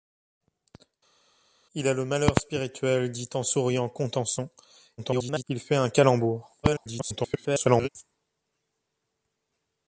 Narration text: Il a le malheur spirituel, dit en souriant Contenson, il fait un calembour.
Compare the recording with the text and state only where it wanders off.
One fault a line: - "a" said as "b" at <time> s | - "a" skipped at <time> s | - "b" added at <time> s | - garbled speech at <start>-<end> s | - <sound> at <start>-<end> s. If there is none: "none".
- garbled speech at 5.0-5.4 s
- garbled speech at 6.6-7.9 s